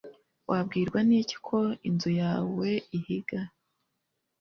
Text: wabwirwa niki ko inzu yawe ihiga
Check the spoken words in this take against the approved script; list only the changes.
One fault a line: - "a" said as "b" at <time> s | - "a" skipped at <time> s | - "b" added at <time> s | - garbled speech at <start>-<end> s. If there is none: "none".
none